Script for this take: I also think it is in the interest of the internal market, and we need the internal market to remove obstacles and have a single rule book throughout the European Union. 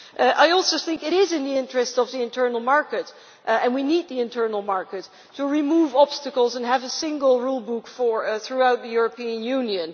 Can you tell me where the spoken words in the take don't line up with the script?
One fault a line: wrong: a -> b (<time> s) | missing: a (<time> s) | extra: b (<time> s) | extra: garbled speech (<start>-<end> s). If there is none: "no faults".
no faults